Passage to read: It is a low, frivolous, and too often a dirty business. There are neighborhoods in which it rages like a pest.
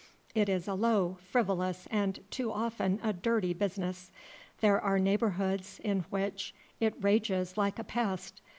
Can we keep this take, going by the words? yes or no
yes